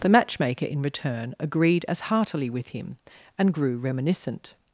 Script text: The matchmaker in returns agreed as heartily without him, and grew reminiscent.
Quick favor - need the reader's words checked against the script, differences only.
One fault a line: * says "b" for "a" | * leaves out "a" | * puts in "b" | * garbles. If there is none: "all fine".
* says "return" for "returns"
* says "with" for "without"